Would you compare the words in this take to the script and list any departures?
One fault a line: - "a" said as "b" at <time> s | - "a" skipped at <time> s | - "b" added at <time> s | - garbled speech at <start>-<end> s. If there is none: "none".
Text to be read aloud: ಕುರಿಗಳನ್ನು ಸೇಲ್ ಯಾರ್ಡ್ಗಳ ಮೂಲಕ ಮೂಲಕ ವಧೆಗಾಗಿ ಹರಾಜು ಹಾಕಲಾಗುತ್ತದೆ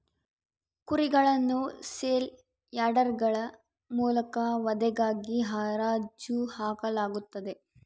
- "ಮೂಲಕ" skipped at 4.4 s